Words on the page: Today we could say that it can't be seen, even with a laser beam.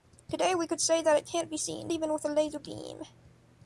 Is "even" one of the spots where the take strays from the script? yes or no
no